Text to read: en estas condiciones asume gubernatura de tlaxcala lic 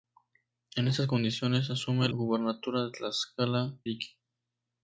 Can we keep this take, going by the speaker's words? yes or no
yes